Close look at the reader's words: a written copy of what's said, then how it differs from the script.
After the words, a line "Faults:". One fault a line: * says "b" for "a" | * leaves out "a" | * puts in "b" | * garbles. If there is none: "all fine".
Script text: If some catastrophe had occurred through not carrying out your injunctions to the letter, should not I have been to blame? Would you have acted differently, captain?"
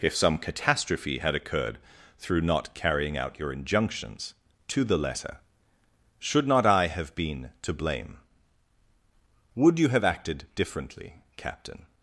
If some catastrophe had occurred through not carrying out your injunctions to the letter, should not I have been to blame? Would you have acted differently, captain?"
Faults:
all fine